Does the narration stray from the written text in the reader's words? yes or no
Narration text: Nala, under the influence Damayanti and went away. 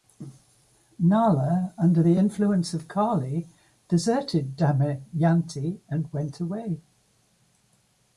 yes